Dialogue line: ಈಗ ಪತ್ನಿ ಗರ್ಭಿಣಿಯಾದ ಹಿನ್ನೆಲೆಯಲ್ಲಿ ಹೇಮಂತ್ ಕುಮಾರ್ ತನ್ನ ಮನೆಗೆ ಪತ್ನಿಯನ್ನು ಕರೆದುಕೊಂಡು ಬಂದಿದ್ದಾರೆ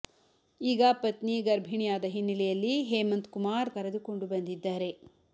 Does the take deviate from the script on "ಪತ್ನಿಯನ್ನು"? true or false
true